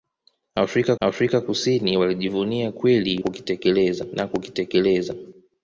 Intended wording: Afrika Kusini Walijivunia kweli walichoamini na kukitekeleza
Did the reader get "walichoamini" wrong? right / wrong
wrong